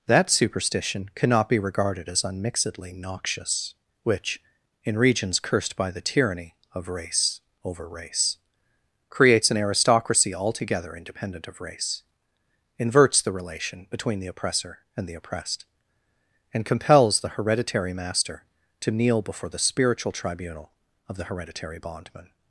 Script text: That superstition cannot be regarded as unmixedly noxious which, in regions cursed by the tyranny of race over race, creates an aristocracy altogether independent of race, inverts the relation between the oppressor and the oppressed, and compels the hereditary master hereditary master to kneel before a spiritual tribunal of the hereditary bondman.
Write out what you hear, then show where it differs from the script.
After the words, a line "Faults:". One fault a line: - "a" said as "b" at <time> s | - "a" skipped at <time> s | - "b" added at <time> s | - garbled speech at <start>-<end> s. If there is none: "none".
That superstition cannot be regarded as unmixedly noxious which, in regions cursed by the tyranny of race over race, creates an aristocracy altogether independent of race, inverts the relation between the oppressor and the oppressed, and compels the hereditary master to kneel before the spiritual tribunal of the hereditary bondman.
Faults:
- "hereditary master" skipped at 18.4 s
- "a" said as "the" at 19.5 s